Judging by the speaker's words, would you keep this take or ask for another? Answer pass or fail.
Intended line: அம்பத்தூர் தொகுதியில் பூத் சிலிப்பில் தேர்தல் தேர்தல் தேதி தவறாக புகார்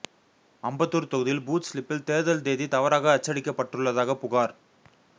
fail